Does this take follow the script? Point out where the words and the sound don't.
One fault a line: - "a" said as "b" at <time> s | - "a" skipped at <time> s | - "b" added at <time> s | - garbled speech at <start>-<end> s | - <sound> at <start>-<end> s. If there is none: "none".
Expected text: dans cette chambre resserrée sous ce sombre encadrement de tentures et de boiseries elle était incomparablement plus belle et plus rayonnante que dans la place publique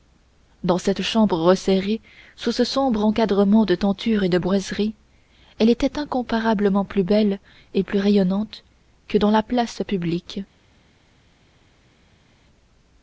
none